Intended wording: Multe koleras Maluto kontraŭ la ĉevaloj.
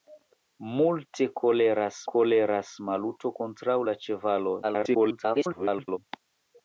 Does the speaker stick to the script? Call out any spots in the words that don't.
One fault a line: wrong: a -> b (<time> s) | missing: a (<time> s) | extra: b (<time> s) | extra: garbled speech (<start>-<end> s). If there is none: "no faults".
extra: koleras (2.1 s)
extra: garbled speech (4.6-6.0 s)